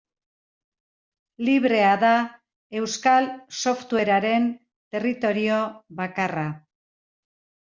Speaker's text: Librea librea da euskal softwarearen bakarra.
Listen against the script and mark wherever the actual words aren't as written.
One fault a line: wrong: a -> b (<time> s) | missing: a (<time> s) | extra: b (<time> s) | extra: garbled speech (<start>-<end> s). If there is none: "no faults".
missing: librea (1.9 s)
extra: territorio (5.0 s)